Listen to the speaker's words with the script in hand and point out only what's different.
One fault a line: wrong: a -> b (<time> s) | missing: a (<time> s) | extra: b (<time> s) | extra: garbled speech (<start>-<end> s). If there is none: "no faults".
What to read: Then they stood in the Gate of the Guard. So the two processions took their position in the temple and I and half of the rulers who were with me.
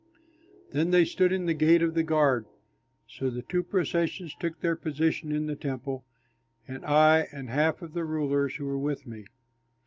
no faults